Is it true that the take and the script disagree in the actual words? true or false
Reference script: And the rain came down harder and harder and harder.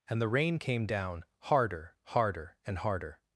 true